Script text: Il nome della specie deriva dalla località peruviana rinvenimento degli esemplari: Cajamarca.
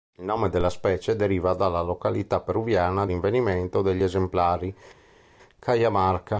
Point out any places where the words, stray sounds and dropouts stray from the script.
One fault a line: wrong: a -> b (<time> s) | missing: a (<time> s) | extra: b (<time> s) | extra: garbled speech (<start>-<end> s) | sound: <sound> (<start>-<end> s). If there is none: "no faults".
no faults